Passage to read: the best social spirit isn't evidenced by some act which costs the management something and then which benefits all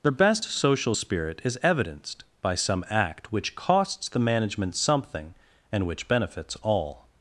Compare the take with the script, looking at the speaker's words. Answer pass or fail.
fail